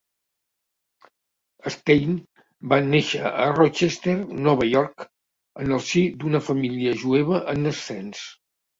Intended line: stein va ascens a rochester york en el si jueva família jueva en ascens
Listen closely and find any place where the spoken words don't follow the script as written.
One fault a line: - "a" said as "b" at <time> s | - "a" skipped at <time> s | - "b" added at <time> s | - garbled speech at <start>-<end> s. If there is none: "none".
- "ascens" said as "néixer" at 2.9 s
- "nova" added at 4.5 s
- "jueva" said as "d'una" at 6.2 s